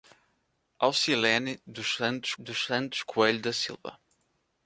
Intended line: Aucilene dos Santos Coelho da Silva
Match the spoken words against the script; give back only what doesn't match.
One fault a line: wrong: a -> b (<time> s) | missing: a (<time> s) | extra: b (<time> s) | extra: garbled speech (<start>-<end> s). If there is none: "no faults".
extra: dos Santos (2.3 s)